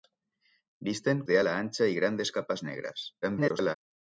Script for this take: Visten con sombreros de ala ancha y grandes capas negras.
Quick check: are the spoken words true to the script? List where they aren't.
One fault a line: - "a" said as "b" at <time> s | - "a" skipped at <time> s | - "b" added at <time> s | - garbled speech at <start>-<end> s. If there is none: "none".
- "con sombreros" skipped at 1.2 s
- garbled speech at 3.2-3.8 s